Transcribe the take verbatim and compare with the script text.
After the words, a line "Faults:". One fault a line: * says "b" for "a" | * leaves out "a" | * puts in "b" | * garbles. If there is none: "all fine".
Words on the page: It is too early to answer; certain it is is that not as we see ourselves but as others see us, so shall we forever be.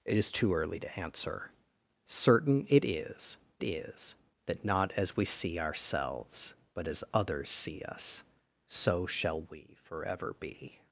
It is too early to answer; certain it is is that not as we see ourselves but as others see us, so shall we forever be.
Faults:
all fine